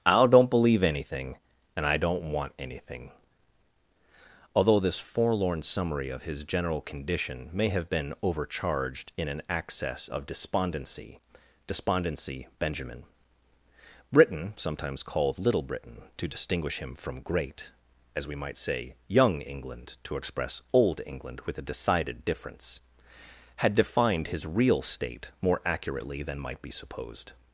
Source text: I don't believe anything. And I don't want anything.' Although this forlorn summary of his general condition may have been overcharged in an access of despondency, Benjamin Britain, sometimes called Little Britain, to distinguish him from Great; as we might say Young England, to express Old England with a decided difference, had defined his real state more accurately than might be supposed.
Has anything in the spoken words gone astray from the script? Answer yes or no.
yes